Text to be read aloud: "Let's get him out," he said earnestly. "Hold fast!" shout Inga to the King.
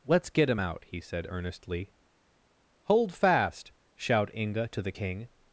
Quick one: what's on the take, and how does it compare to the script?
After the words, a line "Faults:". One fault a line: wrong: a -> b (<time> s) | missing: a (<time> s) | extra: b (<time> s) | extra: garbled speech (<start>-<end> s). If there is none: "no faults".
"Let's get him out," he said earnestly. "Hold fast!" shout Inga to the King.
Faults:
no faults